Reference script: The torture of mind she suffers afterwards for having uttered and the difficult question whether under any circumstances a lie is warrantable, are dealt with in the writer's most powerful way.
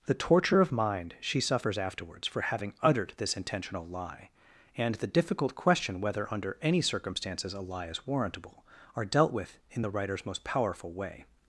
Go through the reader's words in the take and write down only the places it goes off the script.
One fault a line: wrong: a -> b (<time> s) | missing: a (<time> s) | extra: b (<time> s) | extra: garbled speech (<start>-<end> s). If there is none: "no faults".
extra: this intentional lie (3.2 s)